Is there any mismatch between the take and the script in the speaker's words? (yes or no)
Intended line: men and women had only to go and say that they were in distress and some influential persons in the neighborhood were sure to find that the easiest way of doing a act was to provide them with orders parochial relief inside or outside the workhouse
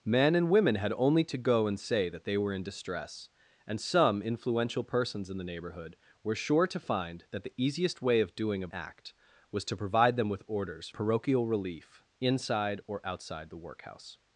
no